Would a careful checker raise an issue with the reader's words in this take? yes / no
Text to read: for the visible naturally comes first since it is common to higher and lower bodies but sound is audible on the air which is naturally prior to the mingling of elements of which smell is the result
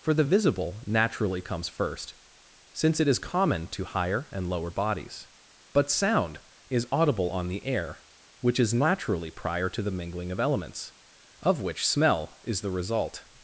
no